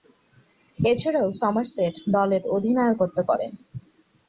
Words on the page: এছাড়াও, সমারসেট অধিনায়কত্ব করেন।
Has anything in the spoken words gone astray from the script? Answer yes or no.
yes